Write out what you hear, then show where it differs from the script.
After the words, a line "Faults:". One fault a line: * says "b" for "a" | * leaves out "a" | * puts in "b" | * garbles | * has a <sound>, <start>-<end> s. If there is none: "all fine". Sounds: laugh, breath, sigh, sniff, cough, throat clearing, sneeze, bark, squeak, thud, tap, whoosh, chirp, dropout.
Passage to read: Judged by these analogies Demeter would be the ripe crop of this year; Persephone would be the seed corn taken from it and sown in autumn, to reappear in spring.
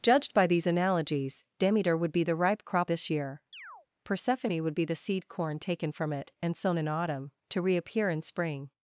Judged by these analogies Demeter would be the ripe crop this year; Persephone would be the seed corn taken from it and sown in autumn, to reappear in spring.
Faults:
* leaves out "of"
* has a chirp, 3.5-3.9 s